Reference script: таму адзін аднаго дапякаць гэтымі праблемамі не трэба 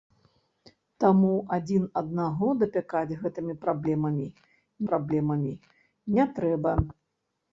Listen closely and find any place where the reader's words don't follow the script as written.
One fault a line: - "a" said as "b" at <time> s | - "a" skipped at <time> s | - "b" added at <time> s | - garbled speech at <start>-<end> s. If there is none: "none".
- "праблемамі" added at 4.9 s